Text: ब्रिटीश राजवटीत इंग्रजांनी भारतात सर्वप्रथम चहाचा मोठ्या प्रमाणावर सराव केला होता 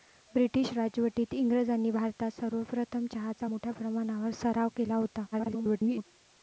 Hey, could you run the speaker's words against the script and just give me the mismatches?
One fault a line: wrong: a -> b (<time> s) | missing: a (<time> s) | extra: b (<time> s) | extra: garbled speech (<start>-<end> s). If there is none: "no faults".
extra: garbled speech (5.3-6.1 s)